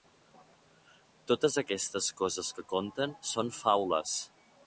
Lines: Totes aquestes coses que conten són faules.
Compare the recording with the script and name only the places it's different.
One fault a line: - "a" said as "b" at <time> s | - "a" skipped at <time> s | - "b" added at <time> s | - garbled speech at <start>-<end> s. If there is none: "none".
none